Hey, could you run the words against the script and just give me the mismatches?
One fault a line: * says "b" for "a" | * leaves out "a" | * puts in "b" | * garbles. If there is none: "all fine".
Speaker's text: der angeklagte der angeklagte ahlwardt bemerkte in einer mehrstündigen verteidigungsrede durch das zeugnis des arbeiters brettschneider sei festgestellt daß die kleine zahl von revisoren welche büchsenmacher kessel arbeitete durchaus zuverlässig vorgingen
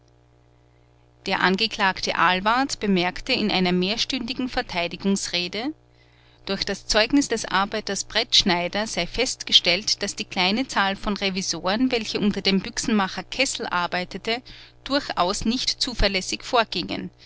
* leaves out "der angeklagte"
* puts in "unter dem"
* puts in "nicht"